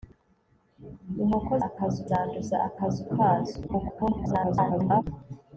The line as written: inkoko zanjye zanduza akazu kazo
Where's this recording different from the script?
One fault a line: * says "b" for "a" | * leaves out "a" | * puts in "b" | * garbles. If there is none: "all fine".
* says "akazu" for "zanjye"
* garbles